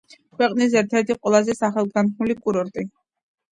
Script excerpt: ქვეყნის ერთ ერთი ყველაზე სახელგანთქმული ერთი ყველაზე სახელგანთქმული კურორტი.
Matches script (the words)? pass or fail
fail